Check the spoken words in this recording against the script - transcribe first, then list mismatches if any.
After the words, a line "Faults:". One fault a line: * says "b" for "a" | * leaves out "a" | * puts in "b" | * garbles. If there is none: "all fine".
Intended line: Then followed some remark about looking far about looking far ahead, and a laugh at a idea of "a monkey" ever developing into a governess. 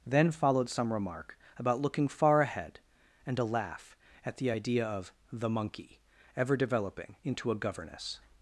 Then followed some remark about looking far ahead, and a laugh at the idea of "the monkey" ever developing into a governess.
Faults:
* leaves out "about looking far"
* says "the" for "a"
* says "the" for "a"